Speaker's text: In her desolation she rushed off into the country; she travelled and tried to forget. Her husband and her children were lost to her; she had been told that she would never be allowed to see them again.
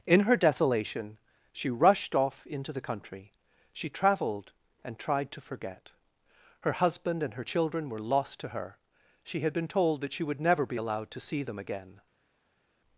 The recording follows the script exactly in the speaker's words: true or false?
true